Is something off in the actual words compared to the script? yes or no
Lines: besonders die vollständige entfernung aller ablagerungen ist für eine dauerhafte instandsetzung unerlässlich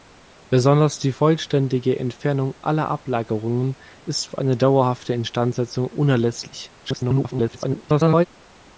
yes